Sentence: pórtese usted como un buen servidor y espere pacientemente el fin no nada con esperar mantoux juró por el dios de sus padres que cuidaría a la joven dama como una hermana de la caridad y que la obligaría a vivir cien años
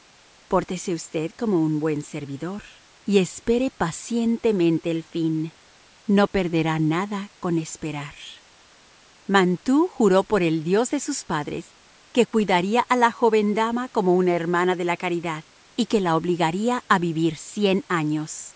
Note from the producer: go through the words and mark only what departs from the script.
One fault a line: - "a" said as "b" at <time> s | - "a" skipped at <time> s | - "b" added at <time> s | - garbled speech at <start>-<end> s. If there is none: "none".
- "perderá" added at 6.3 s